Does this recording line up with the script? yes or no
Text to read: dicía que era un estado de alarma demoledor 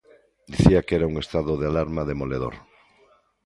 yes